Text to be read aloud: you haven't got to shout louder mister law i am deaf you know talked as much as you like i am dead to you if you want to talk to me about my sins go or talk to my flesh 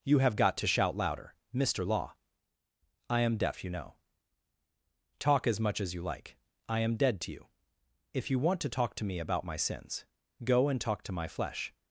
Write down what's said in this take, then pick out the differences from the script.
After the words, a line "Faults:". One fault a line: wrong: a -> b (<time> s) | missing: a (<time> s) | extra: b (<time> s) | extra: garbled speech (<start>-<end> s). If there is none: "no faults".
you have got to shout louder mister law i am deaf you know talk as much as you like i am dead to you if you want to talk to me about my sins go and talk to my flesh
Faults:
wrong: haven't -> have (0.2 s)
wrong: talked -> talk (5.2 s)
wrong: or -> and (10.7 s)